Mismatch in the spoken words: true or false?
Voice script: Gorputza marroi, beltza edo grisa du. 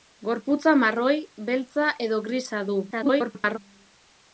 true